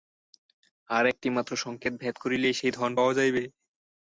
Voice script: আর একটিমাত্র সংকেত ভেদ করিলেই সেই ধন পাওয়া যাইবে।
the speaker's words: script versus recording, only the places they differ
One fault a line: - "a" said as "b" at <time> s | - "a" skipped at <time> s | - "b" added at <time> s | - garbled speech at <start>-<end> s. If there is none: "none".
none